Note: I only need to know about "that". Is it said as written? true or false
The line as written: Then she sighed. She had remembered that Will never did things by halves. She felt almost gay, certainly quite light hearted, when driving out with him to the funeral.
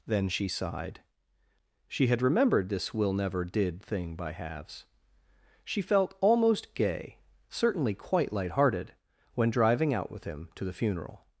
false